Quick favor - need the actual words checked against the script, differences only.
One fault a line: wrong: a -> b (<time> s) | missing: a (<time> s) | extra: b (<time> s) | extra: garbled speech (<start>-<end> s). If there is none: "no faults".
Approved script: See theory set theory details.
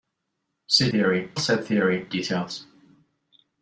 no faults